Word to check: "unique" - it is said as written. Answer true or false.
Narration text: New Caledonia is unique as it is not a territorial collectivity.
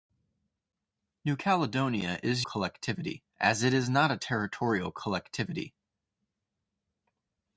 false